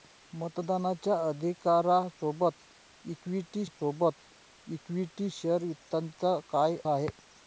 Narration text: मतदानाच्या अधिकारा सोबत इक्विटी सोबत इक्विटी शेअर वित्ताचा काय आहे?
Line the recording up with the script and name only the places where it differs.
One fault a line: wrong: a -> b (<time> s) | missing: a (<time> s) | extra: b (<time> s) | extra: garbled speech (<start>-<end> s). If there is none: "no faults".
no faults